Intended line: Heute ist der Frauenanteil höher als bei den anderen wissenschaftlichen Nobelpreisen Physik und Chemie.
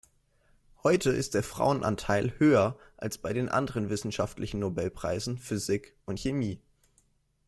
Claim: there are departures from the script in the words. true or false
false